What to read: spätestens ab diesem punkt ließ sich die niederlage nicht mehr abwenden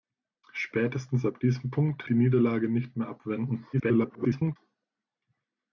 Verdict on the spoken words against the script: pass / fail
fail